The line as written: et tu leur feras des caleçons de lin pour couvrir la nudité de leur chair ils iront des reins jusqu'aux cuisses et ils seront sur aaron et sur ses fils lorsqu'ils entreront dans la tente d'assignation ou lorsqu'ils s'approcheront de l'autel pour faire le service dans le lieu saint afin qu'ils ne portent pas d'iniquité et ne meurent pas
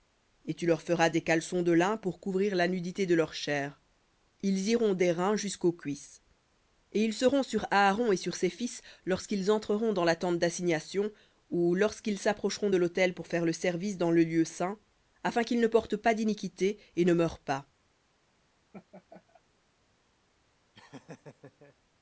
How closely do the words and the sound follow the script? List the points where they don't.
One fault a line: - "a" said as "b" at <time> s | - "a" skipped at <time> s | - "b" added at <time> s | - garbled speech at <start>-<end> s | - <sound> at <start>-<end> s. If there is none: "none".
- laugh at 18.7-19.4 s
- laugh at 20.7-21.8 s